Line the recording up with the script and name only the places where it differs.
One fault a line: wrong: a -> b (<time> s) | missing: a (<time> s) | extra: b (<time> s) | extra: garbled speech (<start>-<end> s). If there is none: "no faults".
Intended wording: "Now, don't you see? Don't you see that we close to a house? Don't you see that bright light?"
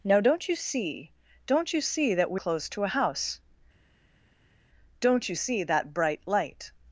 no faults